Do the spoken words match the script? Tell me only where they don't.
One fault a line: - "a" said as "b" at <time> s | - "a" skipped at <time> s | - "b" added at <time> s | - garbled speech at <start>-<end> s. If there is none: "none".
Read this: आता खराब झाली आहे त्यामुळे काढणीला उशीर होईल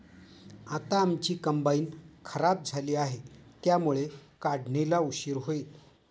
- "आमची कंबाइन" added at 1.0 s